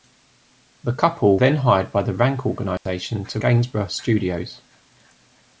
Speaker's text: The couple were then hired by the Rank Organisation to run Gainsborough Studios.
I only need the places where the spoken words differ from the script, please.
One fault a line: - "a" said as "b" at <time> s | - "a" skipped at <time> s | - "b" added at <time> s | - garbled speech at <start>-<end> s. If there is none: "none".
- "were" skipped at 1.4 s
- "run" skipped at 3.4 s